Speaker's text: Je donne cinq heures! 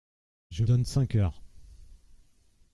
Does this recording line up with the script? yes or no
yes